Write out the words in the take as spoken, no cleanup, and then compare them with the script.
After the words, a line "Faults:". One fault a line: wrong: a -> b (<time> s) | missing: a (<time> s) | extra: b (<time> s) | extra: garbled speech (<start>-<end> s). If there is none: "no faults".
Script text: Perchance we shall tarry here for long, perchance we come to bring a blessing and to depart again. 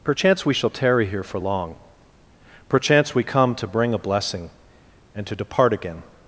Perchance we shall tarry here for long, perchance we come to bring a blessing and to depart again.
Faults:
no faults